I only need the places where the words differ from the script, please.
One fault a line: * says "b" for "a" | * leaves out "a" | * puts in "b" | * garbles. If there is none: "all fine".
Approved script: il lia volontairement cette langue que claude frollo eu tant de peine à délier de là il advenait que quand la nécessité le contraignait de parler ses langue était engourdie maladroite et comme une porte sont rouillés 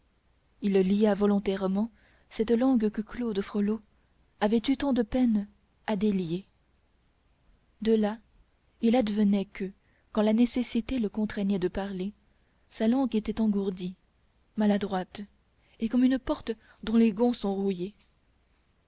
* puts in "avait"
* says "sa" for "ses"
* puts in "dont les gonds"